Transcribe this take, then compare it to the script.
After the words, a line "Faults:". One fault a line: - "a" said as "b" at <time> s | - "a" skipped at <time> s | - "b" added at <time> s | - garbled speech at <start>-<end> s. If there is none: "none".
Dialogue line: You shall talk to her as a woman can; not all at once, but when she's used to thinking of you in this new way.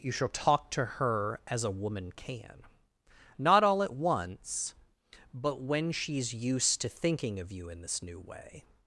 You shall talk to her as a woman can; not all at once, but when she's used to thinking of you in this new way.
Faults:
none